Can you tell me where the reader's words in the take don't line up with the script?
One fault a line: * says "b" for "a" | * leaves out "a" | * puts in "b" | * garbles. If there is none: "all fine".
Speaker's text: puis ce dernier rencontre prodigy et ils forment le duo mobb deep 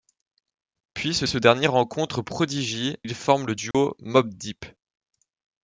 * puts in "ce"
* leaves out "et"